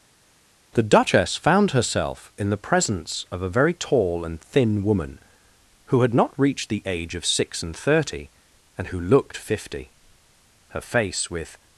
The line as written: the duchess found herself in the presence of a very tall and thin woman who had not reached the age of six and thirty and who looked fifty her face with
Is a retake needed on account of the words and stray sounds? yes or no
no